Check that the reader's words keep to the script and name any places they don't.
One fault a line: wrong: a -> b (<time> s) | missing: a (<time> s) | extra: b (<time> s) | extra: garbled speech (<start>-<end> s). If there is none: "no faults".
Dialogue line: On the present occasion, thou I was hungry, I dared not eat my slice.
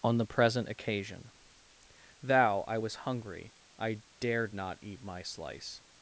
no faults